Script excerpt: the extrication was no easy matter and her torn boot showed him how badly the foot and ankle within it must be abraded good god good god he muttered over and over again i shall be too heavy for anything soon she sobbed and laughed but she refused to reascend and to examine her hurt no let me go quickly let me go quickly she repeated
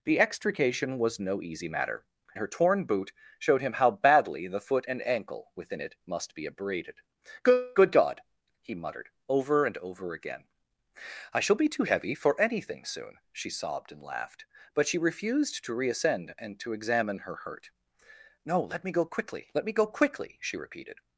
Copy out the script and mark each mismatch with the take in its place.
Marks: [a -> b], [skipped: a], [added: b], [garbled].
the extrication was no easy matter [skipped: and] her torn boot showed him how badly the foot and ankle within it must be abraded good [skipped: god] good god he muttered over and over again i shall be too heavy for anything soon she sobbed and laughed but she refused to reascend and to examine her hurt no let me go quickly let me go quickly she repeated